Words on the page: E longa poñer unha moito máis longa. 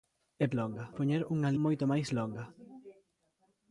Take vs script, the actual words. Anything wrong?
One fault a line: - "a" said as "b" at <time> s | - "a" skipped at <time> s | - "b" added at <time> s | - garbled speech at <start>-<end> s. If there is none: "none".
none